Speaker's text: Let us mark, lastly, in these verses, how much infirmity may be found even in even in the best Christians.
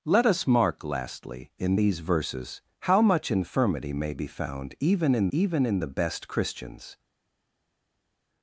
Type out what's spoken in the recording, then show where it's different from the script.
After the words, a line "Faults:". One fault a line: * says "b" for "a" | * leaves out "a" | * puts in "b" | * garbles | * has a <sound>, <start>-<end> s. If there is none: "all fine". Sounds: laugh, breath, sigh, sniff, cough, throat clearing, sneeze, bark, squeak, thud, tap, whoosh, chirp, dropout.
Let us mark, lastly, in these verses, how much infirmity may be found even in even in the best Christians.
Faults:
all fine